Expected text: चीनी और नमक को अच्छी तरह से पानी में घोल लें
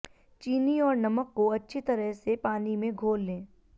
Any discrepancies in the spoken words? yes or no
no